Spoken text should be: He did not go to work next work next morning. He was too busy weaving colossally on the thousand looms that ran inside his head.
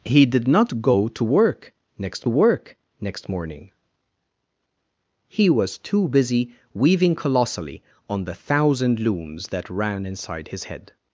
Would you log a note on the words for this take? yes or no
no